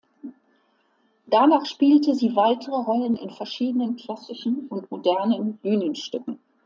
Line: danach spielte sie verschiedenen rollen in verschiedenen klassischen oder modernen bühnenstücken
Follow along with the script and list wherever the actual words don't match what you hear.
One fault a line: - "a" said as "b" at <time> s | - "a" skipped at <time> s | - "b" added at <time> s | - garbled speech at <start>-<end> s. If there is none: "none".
- "verschiedenen" said as "weitere" at 2.4 s
- "oder" said as "und" at 4.7 s